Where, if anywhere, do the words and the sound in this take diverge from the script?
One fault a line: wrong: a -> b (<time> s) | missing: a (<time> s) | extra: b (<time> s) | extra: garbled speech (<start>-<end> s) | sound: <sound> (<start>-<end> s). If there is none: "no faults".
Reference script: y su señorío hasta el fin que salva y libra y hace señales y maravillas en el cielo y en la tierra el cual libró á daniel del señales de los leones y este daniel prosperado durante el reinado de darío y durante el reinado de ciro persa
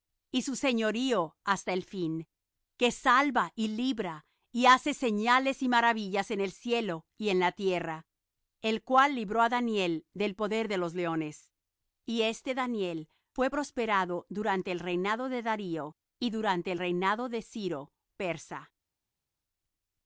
wrong: señales -> poder (10.3 s)
extra: fué (13.3 s)